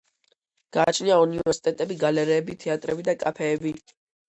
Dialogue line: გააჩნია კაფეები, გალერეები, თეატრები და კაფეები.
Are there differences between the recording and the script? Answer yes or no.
yes